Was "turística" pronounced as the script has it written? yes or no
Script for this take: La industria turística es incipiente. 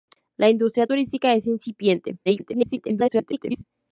yes